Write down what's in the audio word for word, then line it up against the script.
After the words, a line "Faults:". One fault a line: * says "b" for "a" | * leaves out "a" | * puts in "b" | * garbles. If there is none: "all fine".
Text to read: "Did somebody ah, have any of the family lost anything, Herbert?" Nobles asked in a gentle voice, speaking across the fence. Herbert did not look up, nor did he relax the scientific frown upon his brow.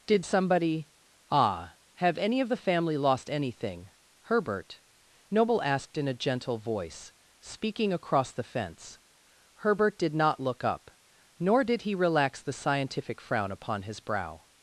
"Did somebody ah, have any of the family lost anything, Herbert?" Noble asked in a gentle voice, speaking across the fence. Herbert did not look up, nor did he relax the scientific frown upon his brow.
Faults:
* says "Noble" for "Nobles"